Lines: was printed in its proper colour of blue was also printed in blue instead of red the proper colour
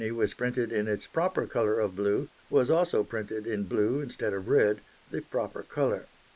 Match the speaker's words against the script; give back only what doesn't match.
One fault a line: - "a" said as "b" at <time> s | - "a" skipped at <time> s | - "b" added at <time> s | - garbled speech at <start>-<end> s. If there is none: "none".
none